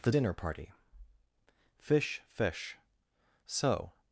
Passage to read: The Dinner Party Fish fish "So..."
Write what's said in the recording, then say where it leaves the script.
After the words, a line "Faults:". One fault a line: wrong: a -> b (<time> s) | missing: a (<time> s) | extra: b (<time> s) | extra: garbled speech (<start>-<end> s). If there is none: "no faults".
The Dinner Party Fish fish "So..."
Faults:
no faults